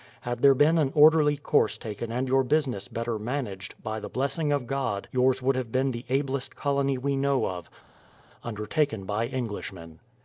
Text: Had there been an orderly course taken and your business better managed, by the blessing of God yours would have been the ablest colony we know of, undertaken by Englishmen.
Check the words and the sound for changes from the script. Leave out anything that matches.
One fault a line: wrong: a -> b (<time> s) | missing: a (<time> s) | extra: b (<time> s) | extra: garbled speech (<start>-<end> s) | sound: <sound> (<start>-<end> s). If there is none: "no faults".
no faults